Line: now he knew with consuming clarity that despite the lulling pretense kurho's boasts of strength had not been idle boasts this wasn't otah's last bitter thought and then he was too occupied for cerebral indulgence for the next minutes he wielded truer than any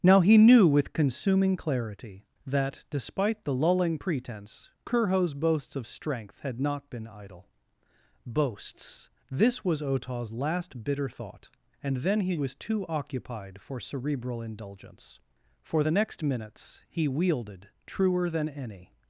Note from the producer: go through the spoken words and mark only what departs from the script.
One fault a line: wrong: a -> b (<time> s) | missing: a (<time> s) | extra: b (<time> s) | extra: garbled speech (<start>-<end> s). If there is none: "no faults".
wrong: wasn't -> was (9.6 s)